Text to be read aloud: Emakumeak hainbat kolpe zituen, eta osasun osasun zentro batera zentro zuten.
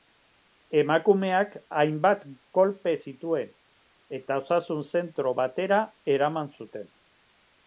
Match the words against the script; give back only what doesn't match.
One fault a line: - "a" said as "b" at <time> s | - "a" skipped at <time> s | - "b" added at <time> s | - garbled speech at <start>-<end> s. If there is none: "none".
- "osasun" skipped at 4.8 s
- "zentro" said as "eraman" at 6.2 s